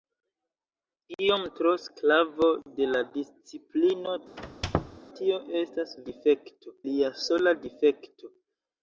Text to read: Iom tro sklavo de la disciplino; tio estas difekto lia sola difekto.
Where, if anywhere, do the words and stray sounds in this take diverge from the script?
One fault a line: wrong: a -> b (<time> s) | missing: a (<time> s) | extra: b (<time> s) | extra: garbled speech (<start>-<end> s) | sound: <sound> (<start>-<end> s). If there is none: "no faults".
sound: squeak (4.4-5.0 s)